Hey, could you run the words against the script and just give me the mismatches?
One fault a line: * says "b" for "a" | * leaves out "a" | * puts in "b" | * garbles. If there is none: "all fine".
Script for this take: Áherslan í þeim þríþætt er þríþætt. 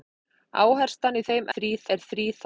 all fine